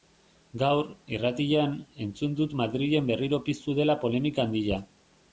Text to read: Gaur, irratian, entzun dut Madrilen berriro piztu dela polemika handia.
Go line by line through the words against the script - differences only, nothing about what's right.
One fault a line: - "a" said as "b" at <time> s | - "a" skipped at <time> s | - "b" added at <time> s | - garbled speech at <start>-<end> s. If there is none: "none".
none